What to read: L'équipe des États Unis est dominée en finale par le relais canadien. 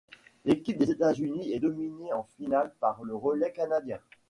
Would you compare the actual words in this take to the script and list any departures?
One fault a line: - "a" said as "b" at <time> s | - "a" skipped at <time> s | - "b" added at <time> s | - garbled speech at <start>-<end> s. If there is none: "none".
none